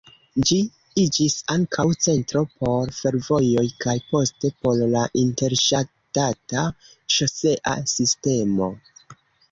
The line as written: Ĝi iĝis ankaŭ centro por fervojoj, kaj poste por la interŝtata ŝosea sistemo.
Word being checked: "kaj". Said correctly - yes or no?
yes